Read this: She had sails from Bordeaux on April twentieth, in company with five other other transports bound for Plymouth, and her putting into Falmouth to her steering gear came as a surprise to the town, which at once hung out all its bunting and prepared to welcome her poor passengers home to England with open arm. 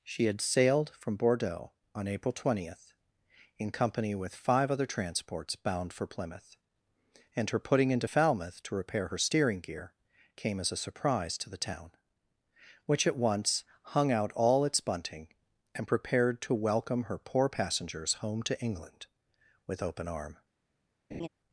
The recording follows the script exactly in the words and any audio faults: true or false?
false